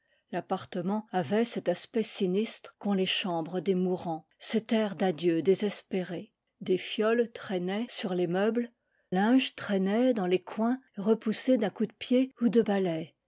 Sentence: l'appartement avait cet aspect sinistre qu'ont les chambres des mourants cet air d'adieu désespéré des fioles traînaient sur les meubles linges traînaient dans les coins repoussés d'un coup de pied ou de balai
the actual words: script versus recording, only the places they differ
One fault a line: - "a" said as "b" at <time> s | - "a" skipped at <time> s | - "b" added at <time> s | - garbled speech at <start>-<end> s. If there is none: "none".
none